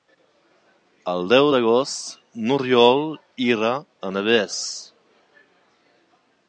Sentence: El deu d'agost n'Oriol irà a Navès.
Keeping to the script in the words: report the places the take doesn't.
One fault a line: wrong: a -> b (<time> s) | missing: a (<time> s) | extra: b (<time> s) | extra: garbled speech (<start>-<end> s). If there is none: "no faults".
no faults